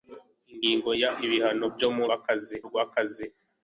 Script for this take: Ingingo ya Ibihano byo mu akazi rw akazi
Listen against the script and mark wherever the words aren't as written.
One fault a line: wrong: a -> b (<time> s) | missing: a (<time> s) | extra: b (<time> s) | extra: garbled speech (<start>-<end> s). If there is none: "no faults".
no faults